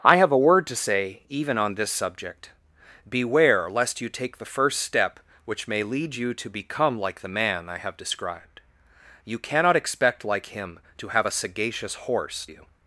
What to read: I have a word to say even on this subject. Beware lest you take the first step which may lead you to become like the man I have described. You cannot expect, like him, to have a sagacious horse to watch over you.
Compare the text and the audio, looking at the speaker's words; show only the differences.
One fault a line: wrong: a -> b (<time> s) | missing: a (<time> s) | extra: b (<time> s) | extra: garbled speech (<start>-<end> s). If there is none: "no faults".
missing: to watch over (12.5 s)